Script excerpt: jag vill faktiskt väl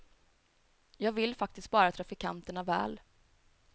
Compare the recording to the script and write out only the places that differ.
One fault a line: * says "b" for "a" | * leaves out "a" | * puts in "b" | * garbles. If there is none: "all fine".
* puts in "bara trafikanterna"